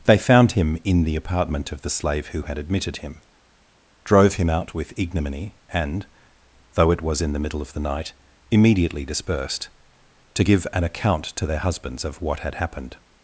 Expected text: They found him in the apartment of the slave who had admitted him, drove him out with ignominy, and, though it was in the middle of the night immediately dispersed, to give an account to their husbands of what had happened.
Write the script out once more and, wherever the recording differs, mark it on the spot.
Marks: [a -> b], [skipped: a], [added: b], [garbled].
They found him in the apartment of the slave who had admitted him, drove him out with ignominy, and, though it was in the middle of the night immediately dispersed, to give an account to their husbands of what had happened.